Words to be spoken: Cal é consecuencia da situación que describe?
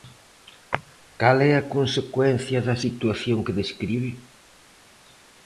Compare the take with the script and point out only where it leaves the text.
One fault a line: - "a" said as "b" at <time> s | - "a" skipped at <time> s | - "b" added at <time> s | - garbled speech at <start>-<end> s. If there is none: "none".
- "a" added at 1.6 s